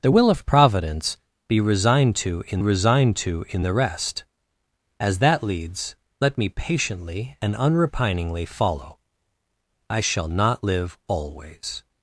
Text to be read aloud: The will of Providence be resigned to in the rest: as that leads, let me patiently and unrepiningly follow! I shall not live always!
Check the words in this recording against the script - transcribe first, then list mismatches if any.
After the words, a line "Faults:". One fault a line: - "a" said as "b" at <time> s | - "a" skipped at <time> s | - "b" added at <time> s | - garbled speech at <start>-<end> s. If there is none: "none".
The will of Providence be resigned to in resigned to in the rest: as that leads, let me patiently and unrepiningly follow! I shall not live always!
Faults:
- "resigned to in" added at 2.6 s